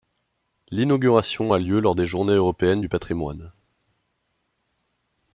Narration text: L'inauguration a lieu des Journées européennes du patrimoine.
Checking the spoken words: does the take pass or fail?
fail